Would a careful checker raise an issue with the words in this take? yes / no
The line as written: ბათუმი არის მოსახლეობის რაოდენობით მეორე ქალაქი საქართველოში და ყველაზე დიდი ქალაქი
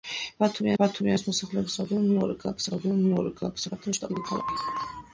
yes